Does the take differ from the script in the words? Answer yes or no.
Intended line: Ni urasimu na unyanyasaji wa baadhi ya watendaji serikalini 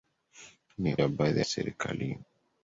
yes